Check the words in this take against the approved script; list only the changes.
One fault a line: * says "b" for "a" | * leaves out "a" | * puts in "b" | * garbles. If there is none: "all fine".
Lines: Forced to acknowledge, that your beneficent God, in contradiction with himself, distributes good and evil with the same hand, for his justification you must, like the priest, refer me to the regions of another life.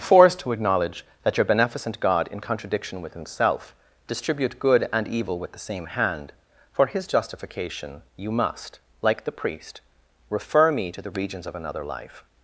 * says "distribute" for "distributes"